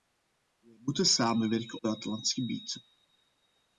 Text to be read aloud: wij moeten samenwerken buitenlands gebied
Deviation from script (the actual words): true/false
false